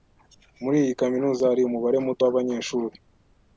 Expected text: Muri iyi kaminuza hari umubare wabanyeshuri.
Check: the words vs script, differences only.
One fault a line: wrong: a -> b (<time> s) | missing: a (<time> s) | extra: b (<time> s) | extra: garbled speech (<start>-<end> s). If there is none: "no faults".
extra: muto (2.0 s)